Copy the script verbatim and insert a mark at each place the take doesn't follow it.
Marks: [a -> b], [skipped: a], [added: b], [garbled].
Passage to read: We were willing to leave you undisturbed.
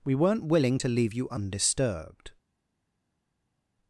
We [were -> weren't] willing to leave you undisturbed.